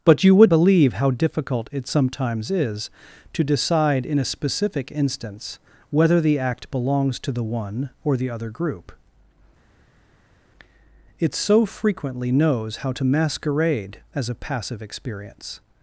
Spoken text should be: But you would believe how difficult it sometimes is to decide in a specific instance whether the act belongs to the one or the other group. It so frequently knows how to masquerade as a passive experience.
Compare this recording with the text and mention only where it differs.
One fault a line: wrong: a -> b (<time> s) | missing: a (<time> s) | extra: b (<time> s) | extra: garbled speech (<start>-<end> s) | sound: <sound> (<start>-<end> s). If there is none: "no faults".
no faults